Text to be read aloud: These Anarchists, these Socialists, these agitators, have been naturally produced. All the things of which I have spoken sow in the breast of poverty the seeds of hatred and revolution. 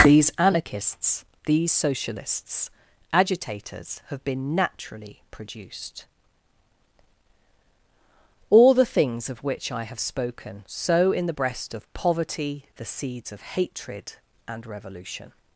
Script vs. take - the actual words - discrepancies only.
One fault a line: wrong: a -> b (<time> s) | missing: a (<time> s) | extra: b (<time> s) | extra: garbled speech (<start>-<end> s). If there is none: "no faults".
missing: these (2.7 s)